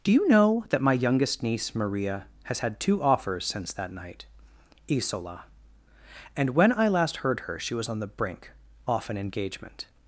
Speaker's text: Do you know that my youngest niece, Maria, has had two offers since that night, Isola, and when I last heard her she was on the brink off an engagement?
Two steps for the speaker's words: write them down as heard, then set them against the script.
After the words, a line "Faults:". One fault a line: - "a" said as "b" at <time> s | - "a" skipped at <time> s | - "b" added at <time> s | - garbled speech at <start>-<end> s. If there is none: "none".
Do you know that my youngest niece, Maria, has had two offers since that night, Isola, and when I last heard her she was on the brink off an engagement?
Faults:
none